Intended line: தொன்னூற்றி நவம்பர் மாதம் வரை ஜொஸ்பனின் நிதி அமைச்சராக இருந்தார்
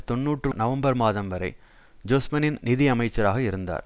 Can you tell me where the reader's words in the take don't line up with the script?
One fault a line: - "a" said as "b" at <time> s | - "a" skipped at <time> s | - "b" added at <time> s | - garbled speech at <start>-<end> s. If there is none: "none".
none